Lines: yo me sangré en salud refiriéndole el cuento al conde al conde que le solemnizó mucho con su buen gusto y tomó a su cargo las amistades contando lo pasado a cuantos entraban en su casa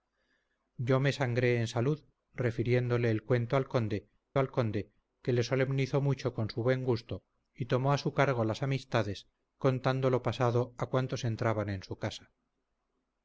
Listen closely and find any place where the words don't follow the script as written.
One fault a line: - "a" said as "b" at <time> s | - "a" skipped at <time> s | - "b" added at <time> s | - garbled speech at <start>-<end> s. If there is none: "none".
none